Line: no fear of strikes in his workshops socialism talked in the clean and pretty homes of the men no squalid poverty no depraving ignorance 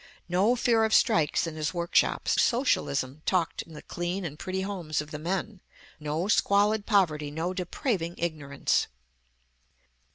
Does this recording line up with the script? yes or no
yes